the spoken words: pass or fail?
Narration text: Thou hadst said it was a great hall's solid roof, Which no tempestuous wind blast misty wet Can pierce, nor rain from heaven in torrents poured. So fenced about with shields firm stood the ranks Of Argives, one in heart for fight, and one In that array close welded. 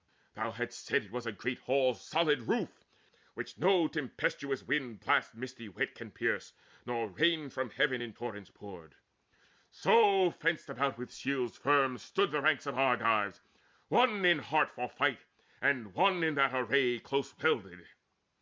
pass